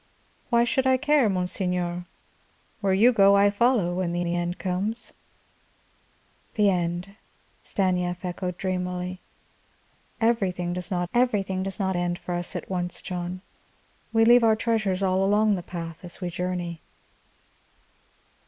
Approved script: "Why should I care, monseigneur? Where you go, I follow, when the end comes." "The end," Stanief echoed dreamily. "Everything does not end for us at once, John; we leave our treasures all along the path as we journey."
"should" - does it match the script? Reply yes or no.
yes